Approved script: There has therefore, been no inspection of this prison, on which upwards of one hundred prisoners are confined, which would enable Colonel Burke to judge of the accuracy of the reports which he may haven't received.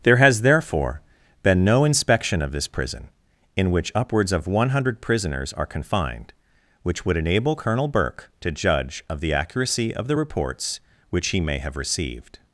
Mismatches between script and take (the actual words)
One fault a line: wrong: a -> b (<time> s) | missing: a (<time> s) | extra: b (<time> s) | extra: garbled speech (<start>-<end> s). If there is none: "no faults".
wrong: on -> in (3.5 s)
wrong: haven't -> have (11.6 s)